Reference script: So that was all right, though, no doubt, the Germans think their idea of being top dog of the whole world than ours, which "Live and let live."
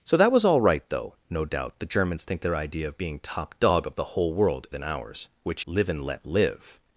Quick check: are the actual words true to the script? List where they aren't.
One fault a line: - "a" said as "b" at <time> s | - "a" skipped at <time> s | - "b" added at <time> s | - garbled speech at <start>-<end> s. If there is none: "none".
none